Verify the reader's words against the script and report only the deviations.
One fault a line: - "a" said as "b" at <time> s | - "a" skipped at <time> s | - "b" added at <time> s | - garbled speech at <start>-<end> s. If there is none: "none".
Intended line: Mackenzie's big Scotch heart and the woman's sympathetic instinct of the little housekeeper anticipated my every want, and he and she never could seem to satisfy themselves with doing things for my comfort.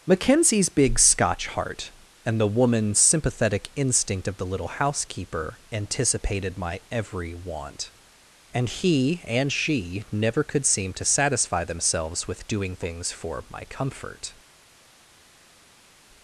none